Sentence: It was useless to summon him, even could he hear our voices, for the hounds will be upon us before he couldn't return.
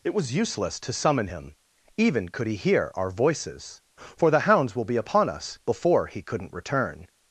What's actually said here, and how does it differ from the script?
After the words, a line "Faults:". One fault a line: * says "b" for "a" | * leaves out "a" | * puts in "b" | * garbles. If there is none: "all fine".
It was useless to summon him, even could he hear our voices, for the hounds will be upon us before he couldn't return.
Faults:
all fine